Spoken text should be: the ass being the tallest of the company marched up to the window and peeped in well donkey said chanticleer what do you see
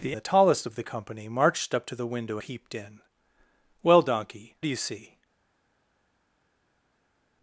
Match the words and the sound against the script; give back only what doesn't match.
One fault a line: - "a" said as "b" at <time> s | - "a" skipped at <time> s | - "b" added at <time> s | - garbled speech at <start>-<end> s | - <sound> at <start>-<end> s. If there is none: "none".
- "ass being" skipped at 0.2 s
- "and" skipped at 2.4 s
- "said chanticleer what" skipped at 4.6 s